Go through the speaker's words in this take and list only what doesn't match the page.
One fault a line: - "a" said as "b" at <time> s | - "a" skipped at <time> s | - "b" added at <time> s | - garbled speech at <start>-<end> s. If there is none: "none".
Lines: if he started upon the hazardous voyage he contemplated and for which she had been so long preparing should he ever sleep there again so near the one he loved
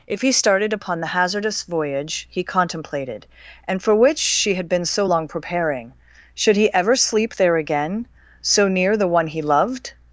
none